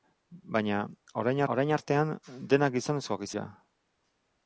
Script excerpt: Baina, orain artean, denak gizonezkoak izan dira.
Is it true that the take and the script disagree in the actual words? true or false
true